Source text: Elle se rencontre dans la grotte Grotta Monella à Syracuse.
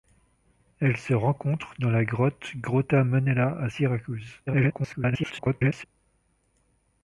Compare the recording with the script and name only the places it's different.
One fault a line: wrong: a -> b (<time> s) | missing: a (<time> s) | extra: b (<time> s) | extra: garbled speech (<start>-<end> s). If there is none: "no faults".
extra: garbled speech (4.5-5.8 s)